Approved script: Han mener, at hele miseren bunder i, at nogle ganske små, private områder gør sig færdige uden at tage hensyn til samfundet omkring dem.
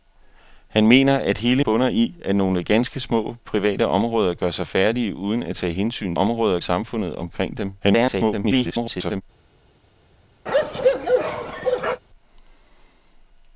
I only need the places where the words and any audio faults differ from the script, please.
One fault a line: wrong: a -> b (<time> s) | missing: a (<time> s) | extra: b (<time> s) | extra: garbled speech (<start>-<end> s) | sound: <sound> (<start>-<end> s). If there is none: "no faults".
missing: miseren (1.6 s)
wrong: til -> områder (6.1 s)
extra: garbled speech (7.8-9.2 s)
sound: bark (10.5-12.0 s)